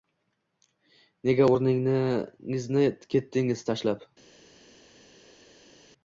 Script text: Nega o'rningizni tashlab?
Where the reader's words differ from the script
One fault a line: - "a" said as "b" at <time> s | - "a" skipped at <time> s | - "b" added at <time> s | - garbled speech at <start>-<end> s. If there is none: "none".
- "ketdingiz" added at 3.2 s